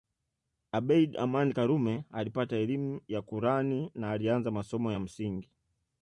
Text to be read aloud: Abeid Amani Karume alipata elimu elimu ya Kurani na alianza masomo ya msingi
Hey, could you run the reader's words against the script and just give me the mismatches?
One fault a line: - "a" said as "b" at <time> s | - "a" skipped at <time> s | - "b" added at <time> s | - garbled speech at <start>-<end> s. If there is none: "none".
- "elimu" skipped at 3.0 s